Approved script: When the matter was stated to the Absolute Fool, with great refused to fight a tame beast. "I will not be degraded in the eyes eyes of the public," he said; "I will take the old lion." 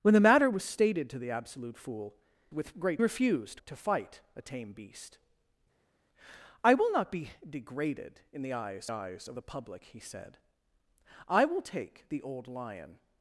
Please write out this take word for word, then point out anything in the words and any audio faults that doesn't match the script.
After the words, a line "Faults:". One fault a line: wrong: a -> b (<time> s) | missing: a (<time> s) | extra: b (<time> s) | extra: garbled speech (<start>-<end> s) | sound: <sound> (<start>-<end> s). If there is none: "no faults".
When the matter was stated to the Absolute Fool, with great refused to fight a tame beast. "I will not be degraded in the eyes eyes of the public," he said; "I will take the old lion."
Faults:
no faults